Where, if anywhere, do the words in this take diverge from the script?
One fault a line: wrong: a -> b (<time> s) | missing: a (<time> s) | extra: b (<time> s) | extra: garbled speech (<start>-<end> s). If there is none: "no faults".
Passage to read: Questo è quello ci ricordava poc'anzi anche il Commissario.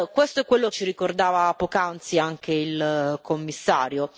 no faults